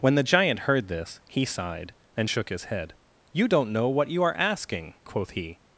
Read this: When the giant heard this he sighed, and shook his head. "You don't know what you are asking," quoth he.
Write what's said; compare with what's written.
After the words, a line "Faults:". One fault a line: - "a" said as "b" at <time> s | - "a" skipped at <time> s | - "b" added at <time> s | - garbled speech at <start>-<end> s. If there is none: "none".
When the giant heard this he sighed, and shook his head. "You don't know what you are asking," quoth he.
Faults:
none